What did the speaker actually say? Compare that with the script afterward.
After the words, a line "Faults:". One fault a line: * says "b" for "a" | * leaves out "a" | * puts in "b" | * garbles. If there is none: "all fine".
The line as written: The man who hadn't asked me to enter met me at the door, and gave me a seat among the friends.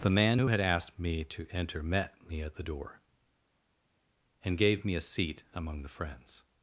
The man who had asked me to enter met me at the door, and gave me a seat among the friends.
Faults:
* says "had" for "hadn't"